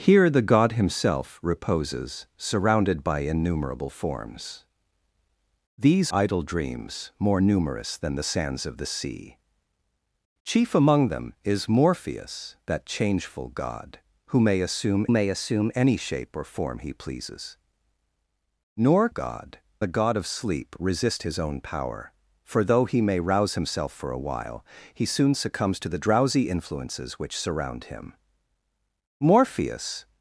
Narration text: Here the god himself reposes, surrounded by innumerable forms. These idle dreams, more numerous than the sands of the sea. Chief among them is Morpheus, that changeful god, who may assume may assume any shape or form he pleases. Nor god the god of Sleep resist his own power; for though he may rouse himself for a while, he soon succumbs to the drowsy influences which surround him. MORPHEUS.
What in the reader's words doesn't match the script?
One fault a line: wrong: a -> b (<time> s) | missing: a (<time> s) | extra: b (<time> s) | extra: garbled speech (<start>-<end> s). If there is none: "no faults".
no faults